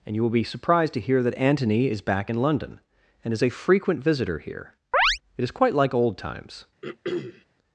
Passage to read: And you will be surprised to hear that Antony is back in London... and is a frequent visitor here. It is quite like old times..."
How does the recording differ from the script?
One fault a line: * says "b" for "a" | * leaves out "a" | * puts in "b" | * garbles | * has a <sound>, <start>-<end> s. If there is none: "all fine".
* has a chirp, 4.9-5.2 s
* has a throat clearing, 6.8-7.4 s